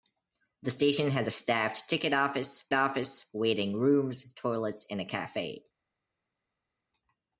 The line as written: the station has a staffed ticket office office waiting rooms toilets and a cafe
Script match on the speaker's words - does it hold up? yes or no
yes